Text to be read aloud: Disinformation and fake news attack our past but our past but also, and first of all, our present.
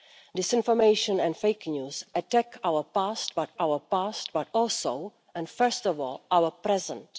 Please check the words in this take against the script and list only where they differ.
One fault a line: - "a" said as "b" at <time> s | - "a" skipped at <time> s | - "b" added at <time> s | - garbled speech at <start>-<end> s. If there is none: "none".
none